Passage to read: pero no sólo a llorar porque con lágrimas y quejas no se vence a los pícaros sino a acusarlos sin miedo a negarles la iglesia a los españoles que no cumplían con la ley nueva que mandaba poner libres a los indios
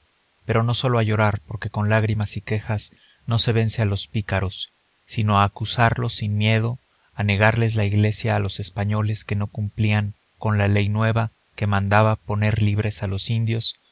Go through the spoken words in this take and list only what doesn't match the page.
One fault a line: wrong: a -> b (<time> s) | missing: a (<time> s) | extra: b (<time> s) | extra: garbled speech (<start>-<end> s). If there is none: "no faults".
no faults